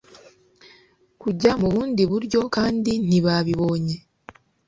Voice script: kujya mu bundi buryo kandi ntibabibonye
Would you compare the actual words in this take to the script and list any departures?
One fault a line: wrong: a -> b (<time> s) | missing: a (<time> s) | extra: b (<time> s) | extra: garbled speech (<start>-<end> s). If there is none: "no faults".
no faults